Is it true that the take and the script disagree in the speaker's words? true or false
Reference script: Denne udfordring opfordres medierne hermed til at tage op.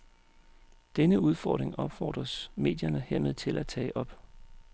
false